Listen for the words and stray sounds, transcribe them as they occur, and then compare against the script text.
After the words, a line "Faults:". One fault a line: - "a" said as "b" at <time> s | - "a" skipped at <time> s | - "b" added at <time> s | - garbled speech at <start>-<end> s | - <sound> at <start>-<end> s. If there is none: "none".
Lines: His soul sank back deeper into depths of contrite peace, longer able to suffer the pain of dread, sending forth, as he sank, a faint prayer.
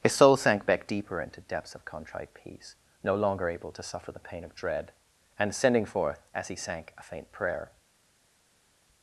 His soul sank back deeper into depths of contrite peace, no longer able to suffer the pain of dread, and sending forth, as he sank, a faint prayer.
Faults:
- "no" added at 3.0 s
- "and" added at 5.4 s